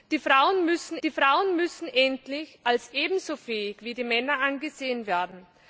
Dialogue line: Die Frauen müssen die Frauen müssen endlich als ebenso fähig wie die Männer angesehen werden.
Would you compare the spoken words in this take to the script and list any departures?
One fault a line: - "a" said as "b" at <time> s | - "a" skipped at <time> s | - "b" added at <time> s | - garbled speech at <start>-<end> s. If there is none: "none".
none